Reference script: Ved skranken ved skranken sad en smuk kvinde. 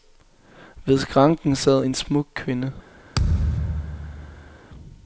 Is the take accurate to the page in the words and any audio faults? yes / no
no